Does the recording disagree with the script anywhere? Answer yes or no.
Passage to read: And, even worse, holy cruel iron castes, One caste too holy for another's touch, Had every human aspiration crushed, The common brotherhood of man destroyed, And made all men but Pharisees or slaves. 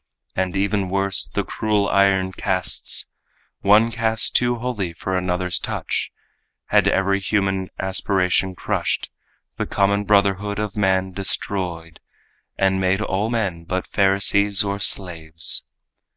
yes